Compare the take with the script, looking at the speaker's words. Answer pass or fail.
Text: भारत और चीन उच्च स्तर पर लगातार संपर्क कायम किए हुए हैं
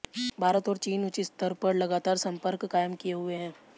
pass